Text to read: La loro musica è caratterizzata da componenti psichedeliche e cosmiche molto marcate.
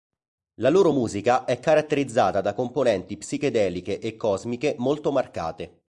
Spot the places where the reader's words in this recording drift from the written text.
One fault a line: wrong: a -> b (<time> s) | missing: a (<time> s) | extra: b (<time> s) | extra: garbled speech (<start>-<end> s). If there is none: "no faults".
no faults